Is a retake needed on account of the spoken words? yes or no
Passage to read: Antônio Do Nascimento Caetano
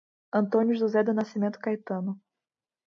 yes